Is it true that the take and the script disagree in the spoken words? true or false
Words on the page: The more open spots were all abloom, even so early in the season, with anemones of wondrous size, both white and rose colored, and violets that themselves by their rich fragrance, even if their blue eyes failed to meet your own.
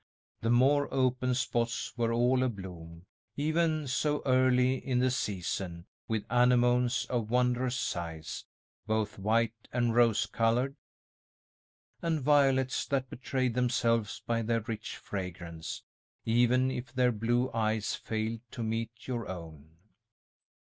true